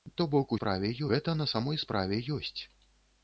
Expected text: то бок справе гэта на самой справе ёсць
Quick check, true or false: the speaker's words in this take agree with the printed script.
true